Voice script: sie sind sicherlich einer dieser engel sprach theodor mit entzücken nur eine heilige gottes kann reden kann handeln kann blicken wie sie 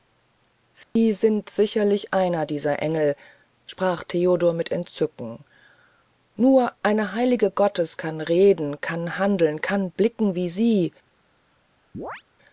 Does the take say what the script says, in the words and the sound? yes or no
no